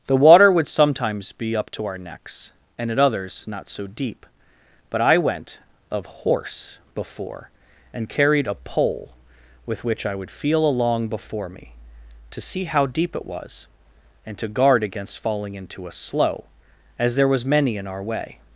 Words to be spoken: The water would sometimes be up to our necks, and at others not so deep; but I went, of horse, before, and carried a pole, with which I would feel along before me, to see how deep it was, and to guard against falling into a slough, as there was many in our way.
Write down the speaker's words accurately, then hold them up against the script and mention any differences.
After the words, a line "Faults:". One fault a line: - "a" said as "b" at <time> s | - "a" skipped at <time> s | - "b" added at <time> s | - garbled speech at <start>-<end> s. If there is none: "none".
The water would sometimes be up to our necks, and at others not so deep; but I went, of horse, before, and carried a pole, with which I would feel along before me, to see how deep it was, and to guard against falling into a slough, as there was many in our way.
Faults:
none